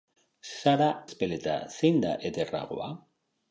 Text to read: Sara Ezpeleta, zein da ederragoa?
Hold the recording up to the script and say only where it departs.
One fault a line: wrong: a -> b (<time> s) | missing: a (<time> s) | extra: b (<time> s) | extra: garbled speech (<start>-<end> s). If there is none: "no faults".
no faults